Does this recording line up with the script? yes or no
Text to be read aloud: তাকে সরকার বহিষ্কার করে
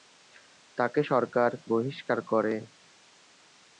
yes